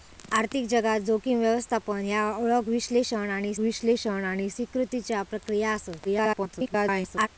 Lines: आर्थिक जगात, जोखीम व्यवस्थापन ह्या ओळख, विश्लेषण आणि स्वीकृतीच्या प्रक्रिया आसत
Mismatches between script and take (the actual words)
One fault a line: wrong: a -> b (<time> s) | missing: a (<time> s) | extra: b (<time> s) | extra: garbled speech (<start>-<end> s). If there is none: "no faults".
extra: विश्लेषण आणि (3.6 s)
extra: garbled speech (6.0-7.3 s)